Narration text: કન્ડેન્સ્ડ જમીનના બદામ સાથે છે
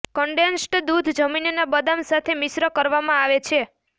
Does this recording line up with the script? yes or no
no